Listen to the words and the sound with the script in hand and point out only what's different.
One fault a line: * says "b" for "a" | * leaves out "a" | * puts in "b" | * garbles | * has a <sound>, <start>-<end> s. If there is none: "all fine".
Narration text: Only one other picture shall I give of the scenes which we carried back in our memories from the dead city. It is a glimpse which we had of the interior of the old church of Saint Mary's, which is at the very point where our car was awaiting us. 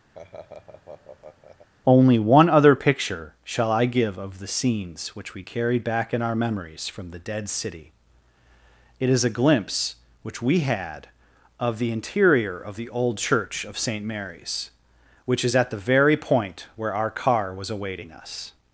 * has a laugh, 0.1-1.7 s